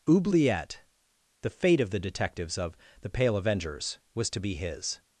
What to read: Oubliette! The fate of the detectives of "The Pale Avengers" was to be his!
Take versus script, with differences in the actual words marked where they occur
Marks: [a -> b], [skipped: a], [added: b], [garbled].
Oubliette! The fate of the detectives of "The Pale Avengers" was to be his!